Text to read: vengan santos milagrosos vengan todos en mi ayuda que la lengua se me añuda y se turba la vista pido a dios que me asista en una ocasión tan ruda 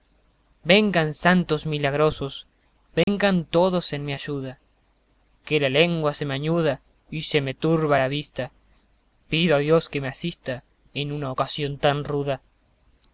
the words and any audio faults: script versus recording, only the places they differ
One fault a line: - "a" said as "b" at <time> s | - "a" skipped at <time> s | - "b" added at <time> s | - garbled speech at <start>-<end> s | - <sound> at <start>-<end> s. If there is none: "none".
- dropout at 3.0-3.1 s
- "me" added at 7.4 s